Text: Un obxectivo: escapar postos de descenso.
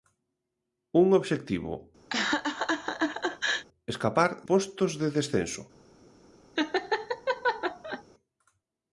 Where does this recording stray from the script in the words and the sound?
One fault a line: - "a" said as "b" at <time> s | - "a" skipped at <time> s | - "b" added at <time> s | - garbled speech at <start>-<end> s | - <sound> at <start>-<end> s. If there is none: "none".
- laugh at 2.1-3.7 s
- laugh at 6.6-8.0 s